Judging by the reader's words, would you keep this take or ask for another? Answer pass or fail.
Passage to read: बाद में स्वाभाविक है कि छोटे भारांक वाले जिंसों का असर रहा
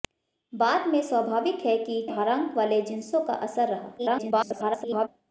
fail